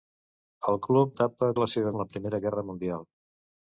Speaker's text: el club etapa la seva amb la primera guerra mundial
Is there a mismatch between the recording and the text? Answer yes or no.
no